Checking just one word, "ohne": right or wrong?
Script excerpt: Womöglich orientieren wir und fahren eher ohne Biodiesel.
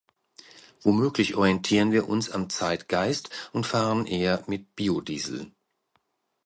wrong